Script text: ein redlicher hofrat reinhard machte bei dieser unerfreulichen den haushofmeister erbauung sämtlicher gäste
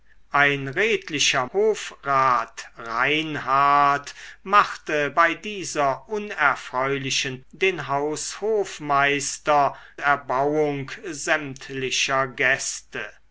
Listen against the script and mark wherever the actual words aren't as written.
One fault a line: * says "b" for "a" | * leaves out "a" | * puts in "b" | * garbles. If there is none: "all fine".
all fine